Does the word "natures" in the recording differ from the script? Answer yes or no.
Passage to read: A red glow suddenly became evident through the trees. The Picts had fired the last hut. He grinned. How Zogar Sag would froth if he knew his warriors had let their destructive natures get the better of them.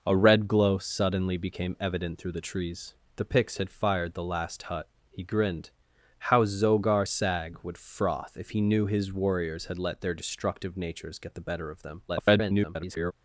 no